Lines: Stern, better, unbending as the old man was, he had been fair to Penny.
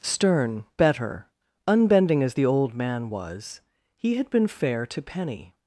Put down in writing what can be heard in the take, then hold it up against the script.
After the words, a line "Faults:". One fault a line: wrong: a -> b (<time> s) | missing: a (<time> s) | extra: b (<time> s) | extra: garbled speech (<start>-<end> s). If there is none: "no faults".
Stern, better, unbending as the old man was, he had been fair to Penny.
Faults:
no faults